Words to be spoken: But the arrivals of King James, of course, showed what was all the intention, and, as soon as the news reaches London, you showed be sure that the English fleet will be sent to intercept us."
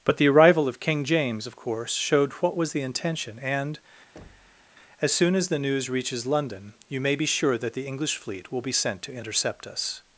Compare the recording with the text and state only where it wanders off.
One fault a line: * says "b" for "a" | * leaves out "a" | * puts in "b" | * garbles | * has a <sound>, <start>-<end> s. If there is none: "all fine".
* says "arrival" for "arrivals"
* leaves out "all"
* has a thud, 4.2-4.7 s
* says "may" for "showed"